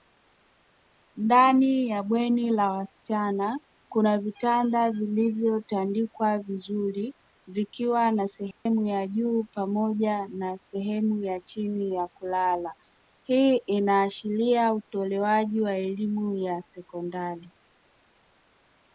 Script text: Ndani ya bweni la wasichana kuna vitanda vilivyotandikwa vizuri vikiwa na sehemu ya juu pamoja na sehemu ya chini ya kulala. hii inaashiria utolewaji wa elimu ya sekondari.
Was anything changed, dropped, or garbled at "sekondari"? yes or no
no